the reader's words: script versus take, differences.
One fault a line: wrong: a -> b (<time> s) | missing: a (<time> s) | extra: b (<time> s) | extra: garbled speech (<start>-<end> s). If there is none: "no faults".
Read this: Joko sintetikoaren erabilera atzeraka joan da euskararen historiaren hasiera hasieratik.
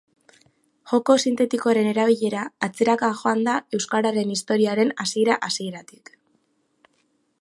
no faults